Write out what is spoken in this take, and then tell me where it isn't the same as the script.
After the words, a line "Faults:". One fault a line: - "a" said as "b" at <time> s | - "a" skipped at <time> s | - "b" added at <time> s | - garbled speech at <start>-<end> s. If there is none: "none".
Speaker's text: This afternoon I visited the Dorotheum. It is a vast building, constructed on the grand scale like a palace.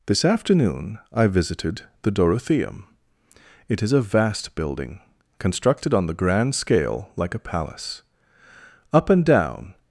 This afternoon I visited the Dorotheum. It is a vast building, constructed on the grand scale like a palace. Up and down
Faults:
- "Up and down" added at 8.9 s